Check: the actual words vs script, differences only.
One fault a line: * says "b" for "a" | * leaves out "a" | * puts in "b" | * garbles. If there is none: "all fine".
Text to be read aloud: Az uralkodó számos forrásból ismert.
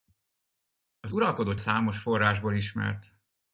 all fine